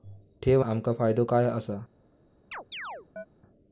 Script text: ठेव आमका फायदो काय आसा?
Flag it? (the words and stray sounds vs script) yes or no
yes